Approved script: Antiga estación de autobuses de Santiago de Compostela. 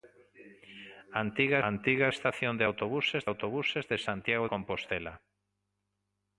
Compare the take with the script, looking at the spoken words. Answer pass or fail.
fail